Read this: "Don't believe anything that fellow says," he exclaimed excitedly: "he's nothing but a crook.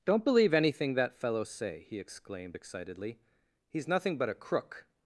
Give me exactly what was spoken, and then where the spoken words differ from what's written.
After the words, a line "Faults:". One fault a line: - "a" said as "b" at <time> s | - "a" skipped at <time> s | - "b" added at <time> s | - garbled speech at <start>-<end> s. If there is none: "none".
"Don't believe anything that fellow say," he exclaimed excitedly: "he's nothing but a crook.
Faults:
- "says" said as "say" at 1.4 s